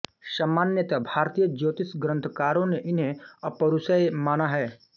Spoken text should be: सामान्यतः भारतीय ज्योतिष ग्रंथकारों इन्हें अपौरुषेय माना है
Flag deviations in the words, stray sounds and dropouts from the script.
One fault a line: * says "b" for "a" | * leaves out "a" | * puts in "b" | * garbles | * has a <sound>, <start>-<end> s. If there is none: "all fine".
* puts in "ने"